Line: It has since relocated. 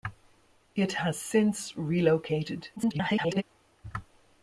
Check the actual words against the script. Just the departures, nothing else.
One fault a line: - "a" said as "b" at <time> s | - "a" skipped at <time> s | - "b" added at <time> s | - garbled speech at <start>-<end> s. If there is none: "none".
- garbled speech at 2.8-3.4 s